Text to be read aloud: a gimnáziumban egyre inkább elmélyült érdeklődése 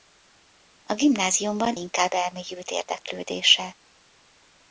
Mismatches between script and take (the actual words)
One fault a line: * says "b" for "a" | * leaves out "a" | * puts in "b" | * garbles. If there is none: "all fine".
* leaves out "egyre"